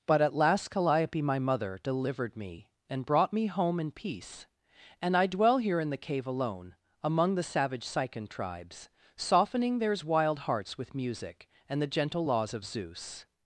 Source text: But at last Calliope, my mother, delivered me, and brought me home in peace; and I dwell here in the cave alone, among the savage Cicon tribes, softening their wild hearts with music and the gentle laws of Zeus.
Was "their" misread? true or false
true